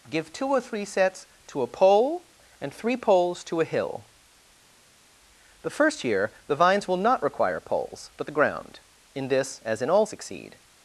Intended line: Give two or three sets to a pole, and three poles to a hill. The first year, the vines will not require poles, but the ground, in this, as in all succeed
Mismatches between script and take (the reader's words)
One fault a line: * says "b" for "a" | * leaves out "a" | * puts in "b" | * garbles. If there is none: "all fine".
all fine